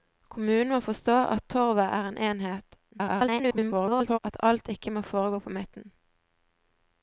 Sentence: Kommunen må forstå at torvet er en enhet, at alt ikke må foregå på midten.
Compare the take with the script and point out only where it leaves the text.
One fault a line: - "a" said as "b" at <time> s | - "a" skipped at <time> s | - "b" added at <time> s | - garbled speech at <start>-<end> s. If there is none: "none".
- garbled speech at 2.9-4.2 s